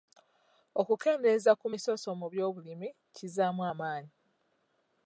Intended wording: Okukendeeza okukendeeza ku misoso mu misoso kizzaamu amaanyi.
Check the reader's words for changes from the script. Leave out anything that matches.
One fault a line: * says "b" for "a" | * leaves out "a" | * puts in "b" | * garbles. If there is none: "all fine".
* leaves out "okukendeeza"
* says "by'obulimi" for "misoso"